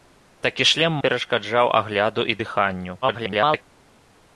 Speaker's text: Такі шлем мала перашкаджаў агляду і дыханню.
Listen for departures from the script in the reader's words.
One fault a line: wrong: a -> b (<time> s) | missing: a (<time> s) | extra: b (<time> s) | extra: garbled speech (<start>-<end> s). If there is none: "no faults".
missing: мала (0.9 s)
extra: garbled speech (3.0-3.6 s)